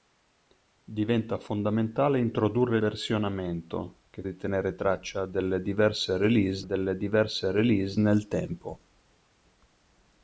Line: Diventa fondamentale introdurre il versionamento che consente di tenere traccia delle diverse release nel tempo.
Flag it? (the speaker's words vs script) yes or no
yes